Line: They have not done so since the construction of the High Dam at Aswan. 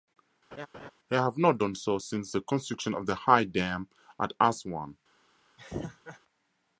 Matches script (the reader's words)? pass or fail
pass